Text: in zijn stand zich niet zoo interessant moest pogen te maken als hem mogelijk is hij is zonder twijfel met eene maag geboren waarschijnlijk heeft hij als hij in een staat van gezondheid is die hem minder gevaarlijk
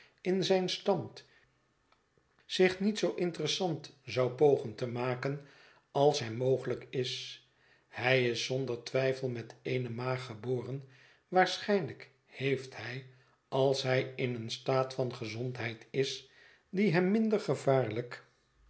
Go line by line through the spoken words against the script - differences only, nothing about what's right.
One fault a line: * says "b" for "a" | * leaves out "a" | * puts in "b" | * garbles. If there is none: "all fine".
* says "zou" for "moest"